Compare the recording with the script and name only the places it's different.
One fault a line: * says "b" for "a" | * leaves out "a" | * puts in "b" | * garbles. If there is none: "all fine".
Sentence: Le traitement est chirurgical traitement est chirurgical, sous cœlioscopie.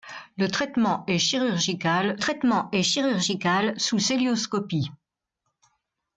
all fine